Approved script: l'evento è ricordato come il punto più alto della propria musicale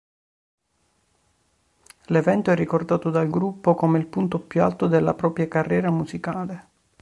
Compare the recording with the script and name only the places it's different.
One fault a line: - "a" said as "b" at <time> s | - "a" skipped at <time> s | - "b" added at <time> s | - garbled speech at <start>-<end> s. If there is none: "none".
- "dal gruppo" added at 3.1 s
- "carriera" added at 5.5 s